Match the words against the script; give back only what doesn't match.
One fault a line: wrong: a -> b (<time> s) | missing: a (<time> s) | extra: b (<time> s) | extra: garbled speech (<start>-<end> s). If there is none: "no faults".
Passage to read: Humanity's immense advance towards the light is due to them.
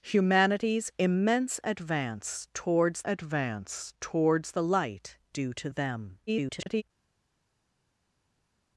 extra: advance towards (3.0 s)
missing: is (5.2 s)
extra: garbled speech (6.3-6.8 s)